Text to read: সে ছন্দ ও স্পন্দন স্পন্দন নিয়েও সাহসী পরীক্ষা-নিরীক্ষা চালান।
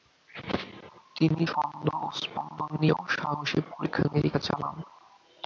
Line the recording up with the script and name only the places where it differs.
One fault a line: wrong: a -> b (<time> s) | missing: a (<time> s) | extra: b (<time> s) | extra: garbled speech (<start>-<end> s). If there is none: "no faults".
wrong: সে -> তিনি (1.1 s)
missing: স্পন্দন (2.7 s)